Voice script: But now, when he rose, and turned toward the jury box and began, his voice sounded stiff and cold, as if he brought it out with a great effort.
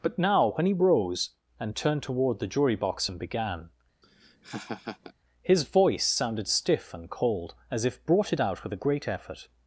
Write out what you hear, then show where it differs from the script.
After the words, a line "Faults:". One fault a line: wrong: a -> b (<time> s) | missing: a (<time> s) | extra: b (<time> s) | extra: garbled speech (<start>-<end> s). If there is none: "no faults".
But now, when he rose, and turned toward the jury box and began, his voice sounded stiff and cold, as if brought it out with a great effort.
Faults:
missing: he (8.0 s)